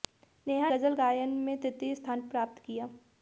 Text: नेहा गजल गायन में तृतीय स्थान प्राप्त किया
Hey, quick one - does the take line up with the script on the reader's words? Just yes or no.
yes